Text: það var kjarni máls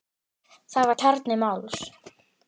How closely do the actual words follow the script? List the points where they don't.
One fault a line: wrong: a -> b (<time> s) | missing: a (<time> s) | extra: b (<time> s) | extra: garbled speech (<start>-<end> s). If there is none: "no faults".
no faults